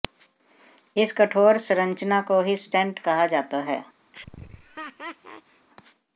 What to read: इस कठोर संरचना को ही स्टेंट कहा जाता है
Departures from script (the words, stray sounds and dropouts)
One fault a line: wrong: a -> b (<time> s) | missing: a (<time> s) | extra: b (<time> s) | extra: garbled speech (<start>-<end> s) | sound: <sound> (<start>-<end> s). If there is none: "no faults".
sound: laugh (4.1-5.7 s)